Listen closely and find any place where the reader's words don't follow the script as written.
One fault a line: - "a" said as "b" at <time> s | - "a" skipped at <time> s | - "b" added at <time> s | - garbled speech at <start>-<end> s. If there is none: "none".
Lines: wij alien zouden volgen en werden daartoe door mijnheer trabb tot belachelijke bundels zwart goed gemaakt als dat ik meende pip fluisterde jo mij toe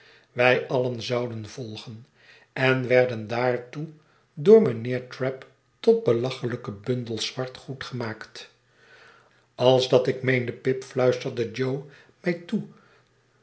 none